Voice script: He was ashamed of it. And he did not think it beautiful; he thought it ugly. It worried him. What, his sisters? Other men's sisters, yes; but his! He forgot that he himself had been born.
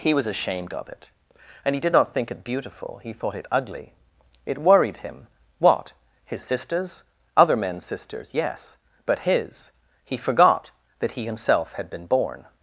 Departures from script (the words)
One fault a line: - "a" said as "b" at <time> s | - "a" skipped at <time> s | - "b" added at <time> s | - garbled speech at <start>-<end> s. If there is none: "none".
none